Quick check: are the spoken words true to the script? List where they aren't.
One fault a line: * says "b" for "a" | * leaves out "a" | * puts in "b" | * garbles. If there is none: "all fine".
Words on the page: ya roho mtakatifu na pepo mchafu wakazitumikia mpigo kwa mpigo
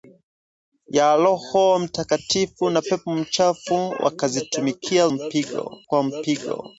all fine